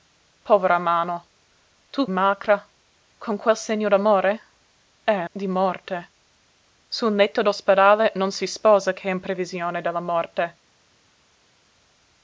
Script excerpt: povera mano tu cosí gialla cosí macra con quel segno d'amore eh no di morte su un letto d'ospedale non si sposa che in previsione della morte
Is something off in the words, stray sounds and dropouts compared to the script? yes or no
yes